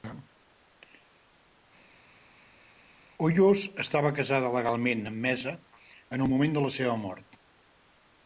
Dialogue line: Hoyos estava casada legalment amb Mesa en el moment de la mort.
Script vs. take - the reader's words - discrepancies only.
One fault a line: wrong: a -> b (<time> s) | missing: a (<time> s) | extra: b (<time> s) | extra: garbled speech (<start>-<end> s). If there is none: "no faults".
extra: seva (6.8 s)